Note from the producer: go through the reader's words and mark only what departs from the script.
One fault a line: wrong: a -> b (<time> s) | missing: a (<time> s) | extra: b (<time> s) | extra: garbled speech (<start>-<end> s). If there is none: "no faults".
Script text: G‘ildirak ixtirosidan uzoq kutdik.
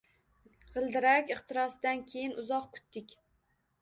extra: keyin (2.1 s)